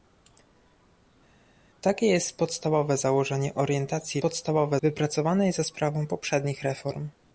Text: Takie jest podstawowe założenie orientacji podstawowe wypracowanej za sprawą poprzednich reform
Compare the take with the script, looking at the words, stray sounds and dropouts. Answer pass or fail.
pass